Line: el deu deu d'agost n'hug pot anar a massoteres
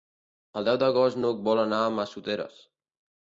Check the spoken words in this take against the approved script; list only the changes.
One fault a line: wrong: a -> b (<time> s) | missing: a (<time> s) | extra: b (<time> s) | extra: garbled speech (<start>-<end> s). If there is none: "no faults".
missing: deu (0.8 s)
wrong: pot -> vol (1.5 s)